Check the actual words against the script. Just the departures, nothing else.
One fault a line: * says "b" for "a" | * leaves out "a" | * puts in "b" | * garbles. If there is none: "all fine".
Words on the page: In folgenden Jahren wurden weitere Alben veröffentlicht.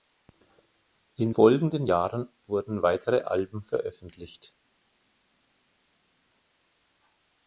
all fine